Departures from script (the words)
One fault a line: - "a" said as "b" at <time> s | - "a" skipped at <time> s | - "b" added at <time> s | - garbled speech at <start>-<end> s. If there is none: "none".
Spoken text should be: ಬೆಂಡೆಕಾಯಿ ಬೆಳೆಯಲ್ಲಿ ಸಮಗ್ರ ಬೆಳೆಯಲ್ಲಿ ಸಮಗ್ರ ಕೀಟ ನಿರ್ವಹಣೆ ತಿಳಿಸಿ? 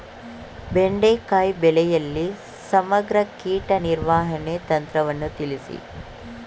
- "ಬೆಳೆಯಲ್ಲಿ ಸಮಗ್ರ" skipped at 3.2 s
- "ತಂತ್ರವನ್ನು" added at 4.7 s